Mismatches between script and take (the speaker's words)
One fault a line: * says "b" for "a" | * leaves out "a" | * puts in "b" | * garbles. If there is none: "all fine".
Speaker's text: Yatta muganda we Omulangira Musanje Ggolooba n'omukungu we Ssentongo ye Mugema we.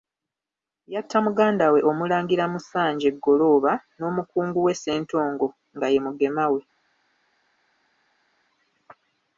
* puts in "nga"